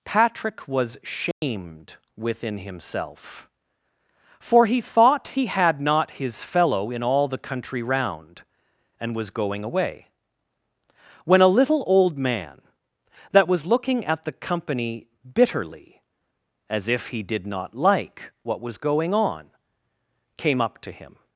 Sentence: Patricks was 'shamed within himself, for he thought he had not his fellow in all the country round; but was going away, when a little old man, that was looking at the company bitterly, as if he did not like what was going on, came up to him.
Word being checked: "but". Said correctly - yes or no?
no